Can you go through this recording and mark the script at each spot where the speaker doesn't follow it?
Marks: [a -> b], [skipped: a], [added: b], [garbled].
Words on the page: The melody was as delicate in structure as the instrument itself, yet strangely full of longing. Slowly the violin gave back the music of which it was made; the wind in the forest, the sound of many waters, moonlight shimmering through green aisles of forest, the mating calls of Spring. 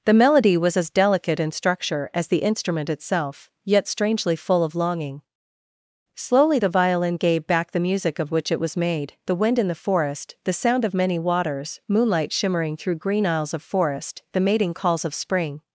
The melody was as delicate in structure as the instrument itself, yet strangely full of longing. Slowly the violin gave back the music of which it was made; the wind in the forest, the sound of many waters, moonlight shimmering through green aisles of forest, the mating calls of Spring.